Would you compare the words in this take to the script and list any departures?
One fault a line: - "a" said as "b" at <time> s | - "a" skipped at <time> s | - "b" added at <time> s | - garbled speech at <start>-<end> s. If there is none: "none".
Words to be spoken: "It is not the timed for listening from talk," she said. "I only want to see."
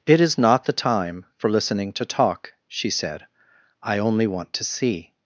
- "timed" said as "time" at 0.7 s
- "from" said as "to" at 1.9 s